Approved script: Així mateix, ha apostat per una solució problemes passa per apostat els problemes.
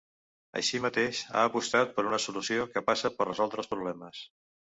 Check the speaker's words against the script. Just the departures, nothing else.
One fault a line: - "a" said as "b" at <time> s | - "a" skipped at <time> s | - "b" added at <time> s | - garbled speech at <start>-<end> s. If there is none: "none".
- "problemes" said as "que" at 2.7 s
- "apostat" said as "resoldre" at 3.3 s